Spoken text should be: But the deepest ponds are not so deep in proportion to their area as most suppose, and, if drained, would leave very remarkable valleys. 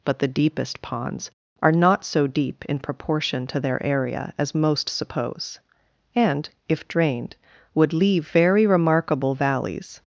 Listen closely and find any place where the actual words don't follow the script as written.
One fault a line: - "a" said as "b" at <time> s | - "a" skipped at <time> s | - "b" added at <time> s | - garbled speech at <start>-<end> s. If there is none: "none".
none